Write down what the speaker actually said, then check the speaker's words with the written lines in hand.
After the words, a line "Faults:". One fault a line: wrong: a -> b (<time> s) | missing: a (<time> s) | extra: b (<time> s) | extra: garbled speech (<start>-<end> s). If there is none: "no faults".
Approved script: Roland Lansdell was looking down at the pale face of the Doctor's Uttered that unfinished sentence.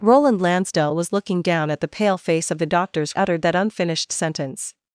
Roland Lansdell was looking down at the pale face of the Doctor's Uttered that unfinished sentence.
Faults:
no faults